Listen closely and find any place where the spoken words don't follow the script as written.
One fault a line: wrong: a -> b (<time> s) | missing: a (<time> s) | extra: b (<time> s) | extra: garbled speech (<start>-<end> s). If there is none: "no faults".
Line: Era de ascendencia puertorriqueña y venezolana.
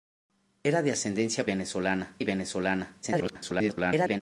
wrong: puertorriqueña -> venezolana (1.4 s)
extra: garbled speech (3.0-4.2 s)